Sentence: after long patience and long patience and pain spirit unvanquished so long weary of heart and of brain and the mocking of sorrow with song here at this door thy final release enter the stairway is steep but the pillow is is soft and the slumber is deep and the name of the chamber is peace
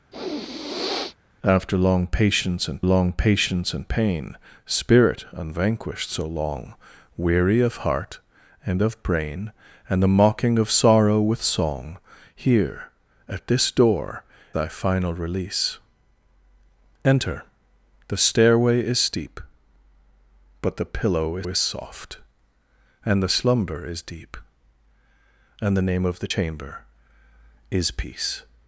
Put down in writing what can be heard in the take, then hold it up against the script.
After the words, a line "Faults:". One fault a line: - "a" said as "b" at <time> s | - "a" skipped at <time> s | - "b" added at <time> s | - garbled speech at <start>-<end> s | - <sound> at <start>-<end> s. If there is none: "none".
after long patience and long patience and pain spirit unvanquished so long weary of heart and of brain and the mocking of sorrow with song here at this door thy final release enter the stairway is steep but the pillow is is soft and the slumber is deep and the name of the chamber is peace
Faults:
- sniff at 0.1-1.2 s